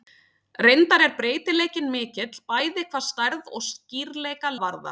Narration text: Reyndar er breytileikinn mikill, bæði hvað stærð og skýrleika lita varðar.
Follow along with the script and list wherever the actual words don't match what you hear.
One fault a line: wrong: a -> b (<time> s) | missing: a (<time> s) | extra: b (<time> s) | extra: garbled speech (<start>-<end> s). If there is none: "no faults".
missing: lita (4.5 s)